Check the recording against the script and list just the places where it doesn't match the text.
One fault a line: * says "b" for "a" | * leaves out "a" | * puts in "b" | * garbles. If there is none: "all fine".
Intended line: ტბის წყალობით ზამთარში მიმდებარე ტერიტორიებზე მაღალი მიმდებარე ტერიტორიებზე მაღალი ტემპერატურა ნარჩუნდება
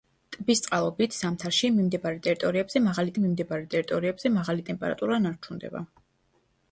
all fine